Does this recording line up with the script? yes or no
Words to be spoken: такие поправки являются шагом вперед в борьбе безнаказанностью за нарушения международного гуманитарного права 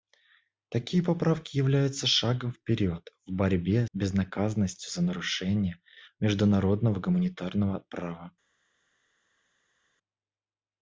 yes